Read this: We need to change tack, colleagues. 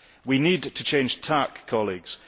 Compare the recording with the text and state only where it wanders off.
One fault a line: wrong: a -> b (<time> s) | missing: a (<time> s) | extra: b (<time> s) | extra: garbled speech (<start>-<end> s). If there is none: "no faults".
no faults